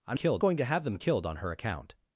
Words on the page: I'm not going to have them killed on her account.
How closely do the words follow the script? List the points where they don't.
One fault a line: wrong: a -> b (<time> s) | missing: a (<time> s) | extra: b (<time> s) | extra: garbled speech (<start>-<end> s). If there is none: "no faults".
wrong: not -> killed (0.1 s)